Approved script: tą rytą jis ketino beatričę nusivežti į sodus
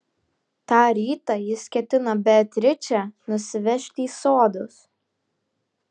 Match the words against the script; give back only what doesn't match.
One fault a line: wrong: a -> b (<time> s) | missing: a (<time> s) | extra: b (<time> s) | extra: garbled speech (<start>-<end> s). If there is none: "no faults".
no faults